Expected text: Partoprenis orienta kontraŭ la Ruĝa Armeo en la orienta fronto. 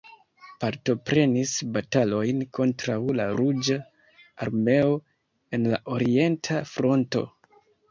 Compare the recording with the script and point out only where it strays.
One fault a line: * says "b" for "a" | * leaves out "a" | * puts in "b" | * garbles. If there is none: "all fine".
* says "batalojn" for "orienta"